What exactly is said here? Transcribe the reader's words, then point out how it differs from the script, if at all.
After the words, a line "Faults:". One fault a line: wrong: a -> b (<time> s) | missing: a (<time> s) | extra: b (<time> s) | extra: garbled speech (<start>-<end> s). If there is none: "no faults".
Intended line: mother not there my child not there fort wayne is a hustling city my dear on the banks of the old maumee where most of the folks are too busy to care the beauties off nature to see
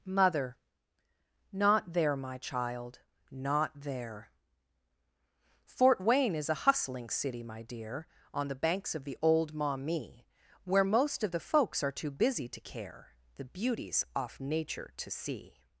mother not there my child not there fort wayne is a hustling city my dear on the banks of the old maumee where most of the folks are too busy to care the beauties off nature to see
Faults:
no faults